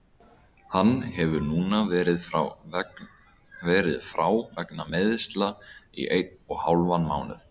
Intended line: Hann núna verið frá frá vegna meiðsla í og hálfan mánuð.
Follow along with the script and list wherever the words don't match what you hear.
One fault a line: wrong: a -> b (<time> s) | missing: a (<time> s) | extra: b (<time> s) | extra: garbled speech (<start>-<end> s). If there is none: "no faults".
extra: hefur (1.2 s)
missing: frá (4.2 s)
extra: einn (6.2 s)